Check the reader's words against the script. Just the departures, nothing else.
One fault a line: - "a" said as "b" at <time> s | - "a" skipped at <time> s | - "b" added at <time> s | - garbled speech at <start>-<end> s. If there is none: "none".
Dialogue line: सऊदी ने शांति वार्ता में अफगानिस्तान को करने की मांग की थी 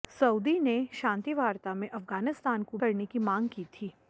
none